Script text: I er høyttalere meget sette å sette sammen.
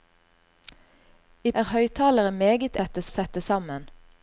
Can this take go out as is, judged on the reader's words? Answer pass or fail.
pass